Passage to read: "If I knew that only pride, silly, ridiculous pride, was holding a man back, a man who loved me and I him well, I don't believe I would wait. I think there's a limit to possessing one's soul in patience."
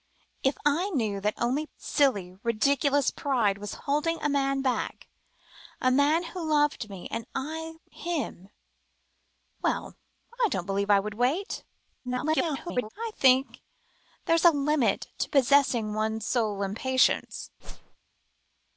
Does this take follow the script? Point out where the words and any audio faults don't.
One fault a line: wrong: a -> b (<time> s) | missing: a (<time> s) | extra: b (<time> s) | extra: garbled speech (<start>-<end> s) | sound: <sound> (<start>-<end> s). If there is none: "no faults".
missing: pride (1.7 s)
extra: garbled speech (12.0-12.9 s)
sound: whoosh (17.6-18.0 s)